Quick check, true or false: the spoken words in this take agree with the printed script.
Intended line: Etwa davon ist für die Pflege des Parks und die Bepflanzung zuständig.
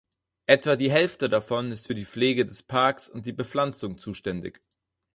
false